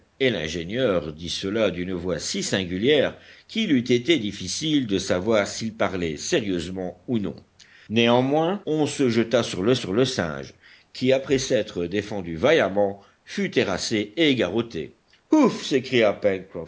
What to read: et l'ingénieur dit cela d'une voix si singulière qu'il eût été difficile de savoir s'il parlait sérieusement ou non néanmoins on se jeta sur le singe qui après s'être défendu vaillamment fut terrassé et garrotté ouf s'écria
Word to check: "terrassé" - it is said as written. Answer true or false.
true